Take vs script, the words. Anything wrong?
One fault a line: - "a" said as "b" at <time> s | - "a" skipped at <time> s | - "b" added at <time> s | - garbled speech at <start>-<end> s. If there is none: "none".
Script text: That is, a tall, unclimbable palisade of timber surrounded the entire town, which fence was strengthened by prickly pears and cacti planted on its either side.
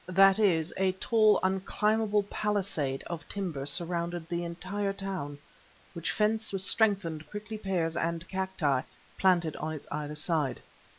- "by" skipped at 7.3 s